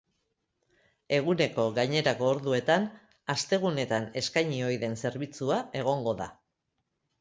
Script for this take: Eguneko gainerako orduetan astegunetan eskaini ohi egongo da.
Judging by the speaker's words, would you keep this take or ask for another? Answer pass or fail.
fail